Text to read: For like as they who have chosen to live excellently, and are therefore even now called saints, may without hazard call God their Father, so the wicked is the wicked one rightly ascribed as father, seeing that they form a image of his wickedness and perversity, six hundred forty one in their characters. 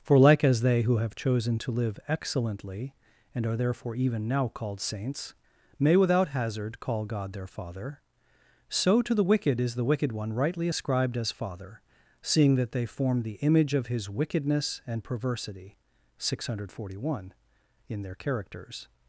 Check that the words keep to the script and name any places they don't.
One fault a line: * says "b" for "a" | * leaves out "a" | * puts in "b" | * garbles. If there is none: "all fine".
* puts in "to"
* says "the" for "a"